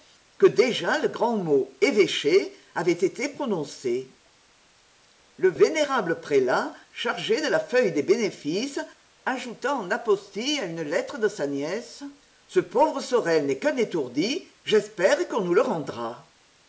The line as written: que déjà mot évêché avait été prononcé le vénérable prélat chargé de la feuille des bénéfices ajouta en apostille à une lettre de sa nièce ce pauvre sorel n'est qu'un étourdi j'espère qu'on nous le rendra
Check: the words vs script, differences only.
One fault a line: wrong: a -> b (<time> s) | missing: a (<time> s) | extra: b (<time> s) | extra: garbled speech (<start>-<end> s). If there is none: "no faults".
extra: le grand (1.0 s)